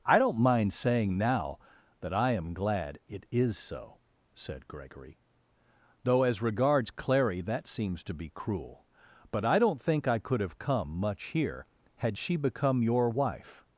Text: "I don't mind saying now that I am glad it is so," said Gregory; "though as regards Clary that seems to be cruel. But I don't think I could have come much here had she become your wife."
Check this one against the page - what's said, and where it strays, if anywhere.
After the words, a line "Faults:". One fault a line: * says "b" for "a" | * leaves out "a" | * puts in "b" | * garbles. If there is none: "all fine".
"I don't mind saying now that I am glad it is so," said Gregory; "though as regards Clary that seems to be cruel. But I don't think I could have come much here had she become your wife."
Faults:
all fine